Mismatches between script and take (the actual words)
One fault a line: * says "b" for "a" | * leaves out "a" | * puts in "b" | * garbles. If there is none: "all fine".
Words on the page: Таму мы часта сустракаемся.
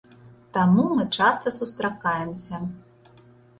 all fine